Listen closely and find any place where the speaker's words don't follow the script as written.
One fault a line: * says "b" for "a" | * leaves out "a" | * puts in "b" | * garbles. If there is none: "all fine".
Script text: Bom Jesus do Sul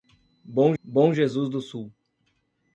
* puts in "bom"